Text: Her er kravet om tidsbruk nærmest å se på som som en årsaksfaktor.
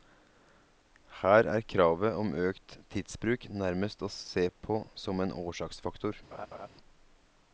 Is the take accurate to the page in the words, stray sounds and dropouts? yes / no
no